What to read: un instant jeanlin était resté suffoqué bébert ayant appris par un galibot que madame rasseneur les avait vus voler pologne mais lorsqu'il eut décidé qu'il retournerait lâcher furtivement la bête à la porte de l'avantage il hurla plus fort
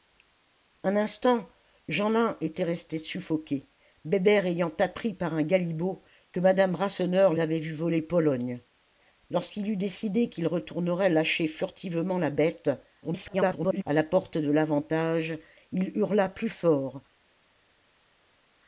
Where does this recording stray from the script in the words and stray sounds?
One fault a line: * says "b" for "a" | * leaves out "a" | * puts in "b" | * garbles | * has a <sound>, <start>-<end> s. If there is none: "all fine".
* leaves out "les"
* leaves out "mais"
* garbles